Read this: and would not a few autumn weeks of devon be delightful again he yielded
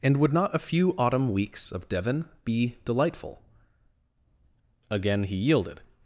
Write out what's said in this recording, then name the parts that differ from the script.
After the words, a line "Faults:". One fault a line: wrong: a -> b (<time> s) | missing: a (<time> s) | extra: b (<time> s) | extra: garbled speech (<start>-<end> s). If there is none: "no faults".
and would not a few autumn weeks of devon be delightful again he yielded
Faults:
no faults